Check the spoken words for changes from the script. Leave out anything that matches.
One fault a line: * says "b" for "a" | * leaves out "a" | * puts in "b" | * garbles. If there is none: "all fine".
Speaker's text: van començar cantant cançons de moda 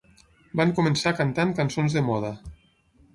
all fine